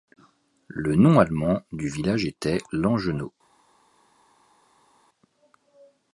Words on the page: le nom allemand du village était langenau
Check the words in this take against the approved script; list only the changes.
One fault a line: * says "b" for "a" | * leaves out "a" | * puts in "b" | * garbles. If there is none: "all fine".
all fine